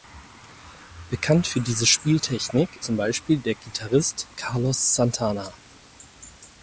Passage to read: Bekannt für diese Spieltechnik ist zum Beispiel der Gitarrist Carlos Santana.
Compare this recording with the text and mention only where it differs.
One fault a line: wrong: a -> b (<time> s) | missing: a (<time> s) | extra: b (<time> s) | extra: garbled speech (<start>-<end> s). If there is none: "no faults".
missing: ist (2.8 s)